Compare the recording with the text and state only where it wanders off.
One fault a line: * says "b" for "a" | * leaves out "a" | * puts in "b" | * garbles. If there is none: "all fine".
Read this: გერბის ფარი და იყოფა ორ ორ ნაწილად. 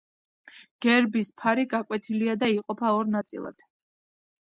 * puts in "გაკვეთილია"
* leaves out "ორ"